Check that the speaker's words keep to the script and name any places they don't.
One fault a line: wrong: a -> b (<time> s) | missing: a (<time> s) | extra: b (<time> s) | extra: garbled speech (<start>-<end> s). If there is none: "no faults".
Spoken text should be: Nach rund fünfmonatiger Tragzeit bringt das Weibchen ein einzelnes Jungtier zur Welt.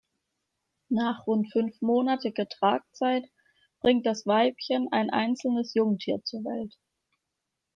no faults